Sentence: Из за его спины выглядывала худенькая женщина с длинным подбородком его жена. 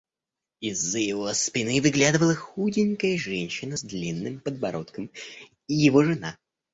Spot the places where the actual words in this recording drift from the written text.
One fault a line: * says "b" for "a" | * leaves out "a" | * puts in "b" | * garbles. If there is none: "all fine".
all fine